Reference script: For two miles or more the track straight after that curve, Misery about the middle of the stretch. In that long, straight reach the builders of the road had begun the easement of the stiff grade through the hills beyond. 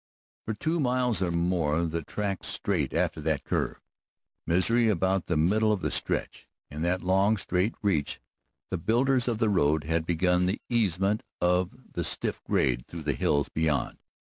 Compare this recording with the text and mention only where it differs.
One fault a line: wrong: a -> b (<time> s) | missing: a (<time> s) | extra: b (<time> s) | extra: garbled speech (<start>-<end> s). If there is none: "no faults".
no faults